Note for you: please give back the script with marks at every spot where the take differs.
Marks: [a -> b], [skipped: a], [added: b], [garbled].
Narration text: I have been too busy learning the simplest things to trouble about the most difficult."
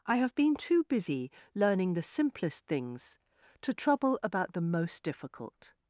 I have been too busy learning the simplest things to trouble about the most difficult."